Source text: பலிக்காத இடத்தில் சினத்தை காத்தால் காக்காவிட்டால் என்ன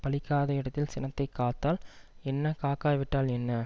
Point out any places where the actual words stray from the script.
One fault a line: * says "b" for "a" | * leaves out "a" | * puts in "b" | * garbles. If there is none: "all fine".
* puts in "என்ன"